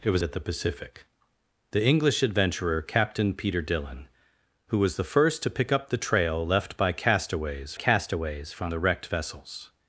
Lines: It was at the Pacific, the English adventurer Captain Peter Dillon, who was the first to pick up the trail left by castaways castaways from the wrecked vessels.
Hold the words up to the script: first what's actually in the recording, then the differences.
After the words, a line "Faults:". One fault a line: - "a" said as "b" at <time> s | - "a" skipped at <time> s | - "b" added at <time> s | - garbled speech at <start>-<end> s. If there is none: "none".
It was at the Pacific, the English adventurer Captain Peter Dillon, who was the first to pick up the trail left by castaways castaways from the wrecked vessels.
Faults:
none